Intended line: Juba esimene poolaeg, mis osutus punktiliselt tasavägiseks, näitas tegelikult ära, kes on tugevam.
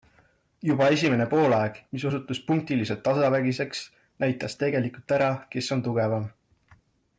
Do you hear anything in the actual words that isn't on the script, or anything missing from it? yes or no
no